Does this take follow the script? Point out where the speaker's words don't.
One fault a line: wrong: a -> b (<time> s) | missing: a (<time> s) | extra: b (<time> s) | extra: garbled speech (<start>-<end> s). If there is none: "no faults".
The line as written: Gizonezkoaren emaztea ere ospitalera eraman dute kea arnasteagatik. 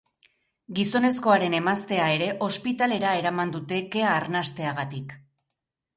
no faults